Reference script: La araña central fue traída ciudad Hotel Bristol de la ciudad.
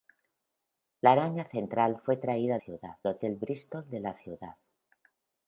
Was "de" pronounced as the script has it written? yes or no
yes